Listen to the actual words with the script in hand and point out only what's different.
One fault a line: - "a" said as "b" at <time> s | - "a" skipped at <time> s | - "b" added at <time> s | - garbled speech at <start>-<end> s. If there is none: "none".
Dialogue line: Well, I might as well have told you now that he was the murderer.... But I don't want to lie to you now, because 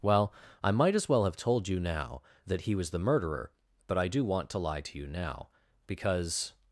- "don't" said as "do" at 4.1 s